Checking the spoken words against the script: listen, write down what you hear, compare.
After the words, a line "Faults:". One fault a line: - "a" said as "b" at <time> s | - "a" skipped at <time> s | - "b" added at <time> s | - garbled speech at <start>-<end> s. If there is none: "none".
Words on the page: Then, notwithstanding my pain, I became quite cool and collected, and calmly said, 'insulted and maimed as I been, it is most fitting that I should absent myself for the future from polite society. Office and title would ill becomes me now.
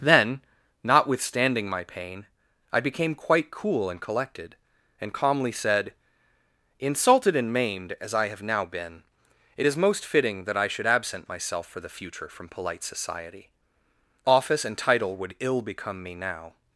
Then, notwithstanding my pain, I became quite cool and collected, and calmly said, 'insulted and maimed as I have now been, it is most fitting that I should absent myself for the future from polite society. Office and title would ill become me now.
Faults:
- "have now" added at 8.3 s
- "becomes" said as "become" at 15.6 s